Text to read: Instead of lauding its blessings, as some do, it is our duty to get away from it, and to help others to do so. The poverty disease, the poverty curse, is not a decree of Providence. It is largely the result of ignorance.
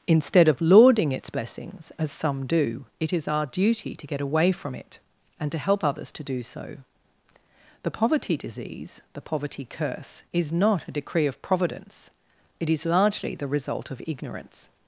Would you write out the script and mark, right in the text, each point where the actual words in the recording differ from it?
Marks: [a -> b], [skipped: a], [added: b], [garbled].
Instead of lauding its blessings, as some do, it is our duty to get away from it, and to help others to do so. The poverty disease, the poverty curse, is not a decree of Providence. It is largely the result of ignorance.